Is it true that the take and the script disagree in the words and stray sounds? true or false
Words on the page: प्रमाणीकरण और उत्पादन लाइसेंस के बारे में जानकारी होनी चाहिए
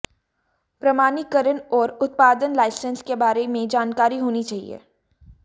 false